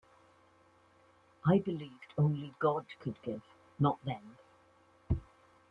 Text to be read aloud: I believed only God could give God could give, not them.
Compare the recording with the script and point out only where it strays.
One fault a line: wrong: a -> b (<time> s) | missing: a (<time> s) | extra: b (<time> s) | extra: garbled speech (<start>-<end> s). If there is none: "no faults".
missing: God could give (3.4 s)